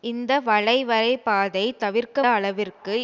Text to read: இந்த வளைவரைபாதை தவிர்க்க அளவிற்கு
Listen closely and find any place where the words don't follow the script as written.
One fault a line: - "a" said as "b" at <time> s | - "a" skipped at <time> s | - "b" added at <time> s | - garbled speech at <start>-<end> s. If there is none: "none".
none